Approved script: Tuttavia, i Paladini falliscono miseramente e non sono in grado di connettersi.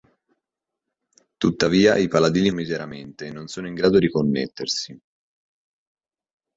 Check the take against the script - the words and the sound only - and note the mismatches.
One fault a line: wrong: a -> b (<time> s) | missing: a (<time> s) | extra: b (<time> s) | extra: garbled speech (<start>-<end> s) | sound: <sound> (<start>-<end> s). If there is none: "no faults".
missing: falliscono (2.5 s)